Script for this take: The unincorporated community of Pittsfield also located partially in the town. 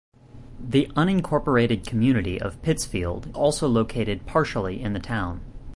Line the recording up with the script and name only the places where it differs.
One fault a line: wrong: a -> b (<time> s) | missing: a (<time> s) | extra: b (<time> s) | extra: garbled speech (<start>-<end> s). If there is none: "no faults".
no faults